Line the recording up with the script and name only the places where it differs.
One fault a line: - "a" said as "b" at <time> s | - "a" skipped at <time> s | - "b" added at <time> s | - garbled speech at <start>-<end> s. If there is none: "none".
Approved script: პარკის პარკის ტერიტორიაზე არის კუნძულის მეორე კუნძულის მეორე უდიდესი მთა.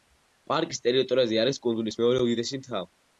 - "პარკის" skipped at 0.8 s
- "კუნძულის მეორე" skipped at 2.2 s